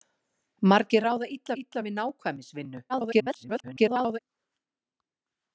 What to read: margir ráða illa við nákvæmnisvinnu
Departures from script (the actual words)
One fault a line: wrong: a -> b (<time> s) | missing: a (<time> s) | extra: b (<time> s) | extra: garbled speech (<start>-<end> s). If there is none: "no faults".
extra: illa (1.6 s)
extra: garbled speech (2.9-4.2 s)